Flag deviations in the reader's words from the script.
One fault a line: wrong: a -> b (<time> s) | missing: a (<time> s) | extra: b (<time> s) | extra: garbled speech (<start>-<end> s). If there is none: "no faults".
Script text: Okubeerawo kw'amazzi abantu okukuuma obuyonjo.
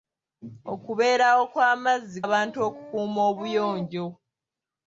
no faults